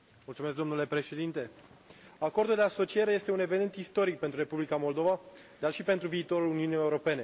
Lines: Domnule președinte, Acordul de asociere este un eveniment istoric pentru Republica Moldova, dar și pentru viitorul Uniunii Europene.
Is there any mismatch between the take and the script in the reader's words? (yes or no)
no